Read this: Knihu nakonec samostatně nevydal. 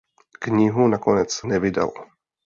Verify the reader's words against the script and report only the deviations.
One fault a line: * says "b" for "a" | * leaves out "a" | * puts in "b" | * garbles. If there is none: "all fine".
* leaves out "samostatně"